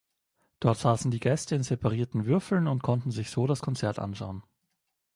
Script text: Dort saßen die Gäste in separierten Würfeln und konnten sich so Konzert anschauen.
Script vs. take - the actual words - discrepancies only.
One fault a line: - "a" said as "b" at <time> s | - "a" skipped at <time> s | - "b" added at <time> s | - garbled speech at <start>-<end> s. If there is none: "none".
- "das" added at 3.5 s